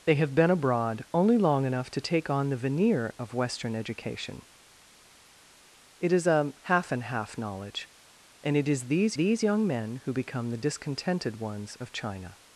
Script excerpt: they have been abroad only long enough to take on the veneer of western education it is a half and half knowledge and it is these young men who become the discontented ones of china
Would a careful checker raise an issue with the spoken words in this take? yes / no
yes